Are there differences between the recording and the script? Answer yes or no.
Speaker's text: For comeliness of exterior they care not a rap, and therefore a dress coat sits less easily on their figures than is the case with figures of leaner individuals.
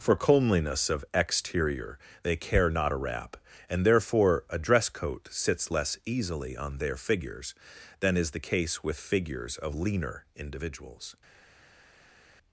no